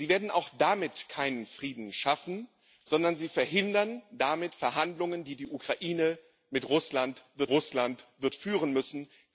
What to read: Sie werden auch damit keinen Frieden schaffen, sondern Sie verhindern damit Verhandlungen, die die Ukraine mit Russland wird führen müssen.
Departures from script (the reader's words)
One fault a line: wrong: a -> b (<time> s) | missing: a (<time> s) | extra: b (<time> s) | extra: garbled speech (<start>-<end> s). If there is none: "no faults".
extra: Russland wird (7.5 s)